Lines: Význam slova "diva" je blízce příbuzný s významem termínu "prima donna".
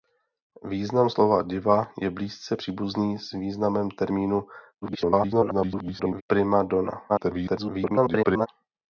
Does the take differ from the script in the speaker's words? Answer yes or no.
yes